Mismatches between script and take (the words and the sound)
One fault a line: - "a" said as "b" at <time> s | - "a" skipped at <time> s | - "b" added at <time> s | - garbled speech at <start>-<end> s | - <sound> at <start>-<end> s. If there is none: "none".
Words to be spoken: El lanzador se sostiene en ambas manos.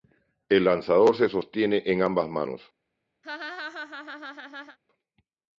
- laugh at 3.2-4.8 s